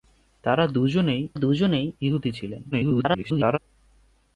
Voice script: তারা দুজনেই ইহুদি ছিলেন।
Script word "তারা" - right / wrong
right